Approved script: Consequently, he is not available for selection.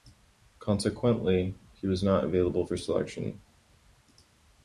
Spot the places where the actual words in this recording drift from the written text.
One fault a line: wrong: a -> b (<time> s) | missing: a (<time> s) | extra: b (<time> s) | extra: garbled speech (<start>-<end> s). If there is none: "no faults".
wrong: is -> was (1.9 s)